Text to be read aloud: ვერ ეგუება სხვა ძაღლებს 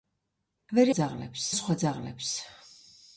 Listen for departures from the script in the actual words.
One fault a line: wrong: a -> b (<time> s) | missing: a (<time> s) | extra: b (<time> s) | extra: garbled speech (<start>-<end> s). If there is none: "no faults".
wrong: ეგუება -> ძაღლებს (1.0 s)